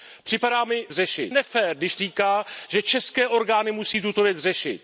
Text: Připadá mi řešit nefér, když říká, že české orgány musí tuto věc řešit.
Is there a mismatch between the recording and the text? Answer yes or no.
no